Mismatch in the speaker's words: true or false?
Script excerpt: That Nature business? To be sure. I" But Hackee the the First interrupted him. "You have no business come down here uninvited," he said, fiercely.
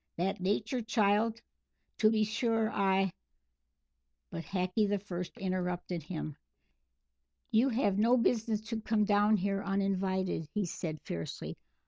true